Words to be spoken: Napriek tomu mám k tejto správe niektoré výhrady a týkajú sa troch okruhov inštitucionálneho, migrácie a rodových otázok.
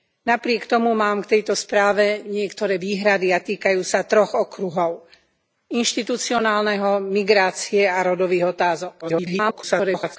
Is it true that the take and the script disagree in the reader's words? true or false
true